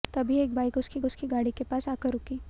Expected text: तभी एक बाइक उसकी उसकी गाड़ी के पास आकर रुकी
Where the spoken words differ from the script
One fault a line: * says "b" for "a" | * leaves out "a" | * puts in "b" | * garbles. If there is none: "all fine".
all fine